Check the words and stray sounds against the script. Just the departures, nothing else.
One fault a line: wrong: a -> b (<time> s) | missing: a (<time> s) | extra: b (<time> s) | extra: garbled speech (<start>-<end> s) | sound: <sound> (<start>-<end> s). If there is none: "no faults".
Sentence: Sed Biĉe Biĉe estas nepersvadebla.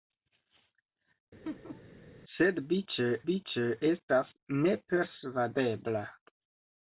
sound: laugh (1.4-1.8 s)